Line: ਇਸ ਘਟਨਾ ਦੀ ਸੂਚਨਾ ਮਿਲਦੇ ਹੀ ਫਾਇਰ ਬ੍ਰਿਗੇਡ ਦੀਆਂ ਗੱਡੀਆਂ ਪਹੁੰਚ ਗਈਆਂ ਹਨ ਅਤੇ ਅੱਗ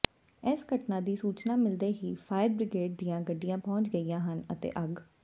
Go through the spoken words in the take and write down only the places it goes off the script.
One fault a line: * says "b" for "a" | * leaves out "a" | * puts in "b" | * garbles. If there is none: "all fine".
all fine